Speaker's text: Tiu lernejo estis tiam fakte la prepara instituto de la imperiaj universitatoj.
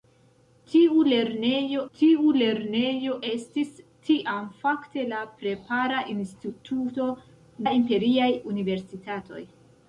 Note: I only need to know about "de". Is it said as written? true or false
false